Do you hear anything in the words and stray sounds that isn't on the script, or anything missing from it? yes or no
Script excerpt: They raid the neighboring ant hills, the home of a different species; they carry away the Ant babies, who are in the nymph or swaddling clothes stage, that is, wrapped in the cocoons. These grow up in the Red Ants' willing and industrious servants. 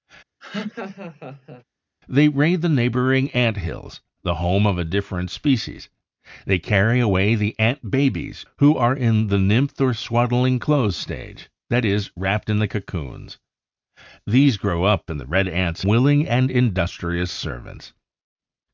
yes